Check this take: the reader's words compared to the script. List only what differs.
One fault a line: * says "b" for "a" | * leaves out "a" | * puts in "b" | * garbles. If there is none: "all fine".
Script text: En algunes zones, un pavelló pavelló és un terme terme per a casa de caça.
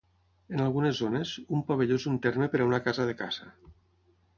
* leaves out "pavelló"
* leaves out "terme"
* puts in "una"